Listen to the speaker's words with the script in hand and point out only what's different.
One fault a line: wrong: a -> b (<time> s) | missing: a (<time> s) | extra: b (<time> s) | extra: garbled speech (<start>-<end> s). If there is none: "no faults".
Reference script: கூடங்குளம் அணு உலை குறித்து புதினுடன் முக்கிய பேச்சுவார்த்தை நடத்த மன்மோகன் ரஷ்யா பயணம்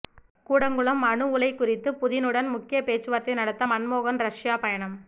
no faults